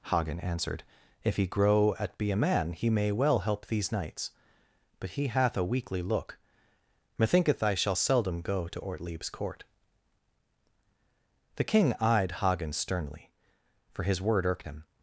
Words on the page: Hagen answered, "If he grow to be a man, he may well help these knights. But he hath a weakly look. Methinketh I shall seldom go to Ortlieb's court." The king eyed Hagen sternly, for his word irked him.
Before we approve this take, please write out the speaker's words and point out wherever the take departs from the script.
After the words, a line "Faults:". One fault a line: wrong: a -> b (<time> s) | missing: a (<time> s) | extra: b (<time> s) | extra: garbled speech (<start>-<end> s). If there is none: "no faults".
Hagen answered, "If he grow at be a man, he may well help these knights. But he hath a weakly look. Methinketh I shall seldom go to Ortlieb's court." The king eyed Hagen sternly, for his word irked him.
Faults:
wrong: to -> at (2.0 s)